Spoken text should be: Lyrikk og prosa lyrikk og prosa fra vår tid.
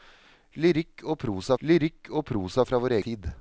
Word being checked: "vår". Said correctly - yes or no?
yes